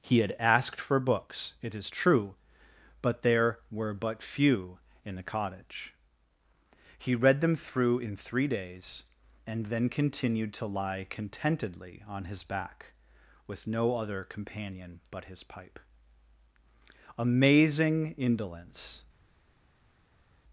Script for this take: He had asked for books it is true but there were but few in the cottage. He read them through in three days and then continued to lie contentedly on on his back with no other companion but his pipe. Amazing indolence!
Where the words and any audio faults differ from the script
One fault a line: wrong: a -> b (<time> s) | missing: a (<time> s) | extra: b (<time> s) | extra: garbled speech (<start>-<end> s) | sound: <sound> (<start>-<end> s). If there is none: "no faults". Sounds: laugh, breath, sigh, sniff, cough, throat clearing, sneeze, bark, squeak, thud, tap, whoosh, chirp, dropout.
missing: on (12.2 s)